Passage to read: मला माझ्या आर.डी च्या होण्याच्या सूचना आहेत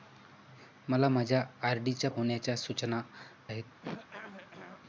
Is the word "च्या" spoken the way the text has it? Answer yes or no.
yes